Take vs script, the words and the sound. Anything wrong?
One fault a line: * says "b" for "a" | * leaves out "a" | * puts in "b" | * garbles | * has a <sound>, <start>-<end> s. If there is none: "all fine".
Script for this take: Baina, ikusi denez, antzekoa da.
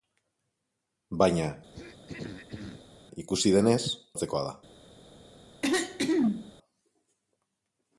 * has a throat clearing, 1.7-3.0 s
* has a throat clearing, 5.6-6.5 s